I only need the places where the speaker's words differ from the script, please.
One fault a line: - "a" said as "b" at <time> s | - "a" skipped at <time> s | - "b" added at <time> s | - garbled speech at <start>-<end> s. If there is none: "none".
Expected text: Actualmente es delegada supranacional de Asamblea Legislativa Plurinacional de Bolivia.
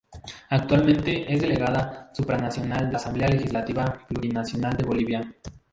none